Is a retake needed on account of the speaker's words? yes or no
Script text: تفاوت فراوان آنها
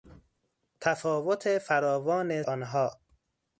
no